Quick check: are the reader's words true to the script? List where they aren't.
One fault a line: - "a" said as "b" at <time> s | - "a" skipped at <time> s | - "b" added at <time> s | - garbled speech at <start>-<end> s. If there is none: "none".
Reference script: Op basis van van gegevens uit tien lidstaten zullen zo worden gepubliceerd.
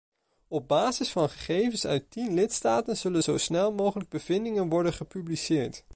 - "van" skipped at 1.3 s
- "snel mogelijk bevindingen" added at 3.4 s